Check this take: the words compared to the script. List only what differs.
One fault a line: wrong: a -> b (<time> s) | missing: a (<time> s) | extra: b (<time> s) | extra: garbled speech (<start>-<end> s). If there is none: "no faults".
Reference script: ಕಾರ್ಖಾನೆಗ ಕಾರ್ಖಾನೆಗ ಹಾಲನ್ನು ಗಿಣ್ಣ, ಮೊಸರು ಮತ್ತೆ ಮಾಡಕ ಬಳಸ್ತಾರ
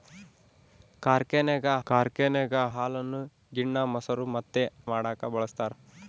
no faults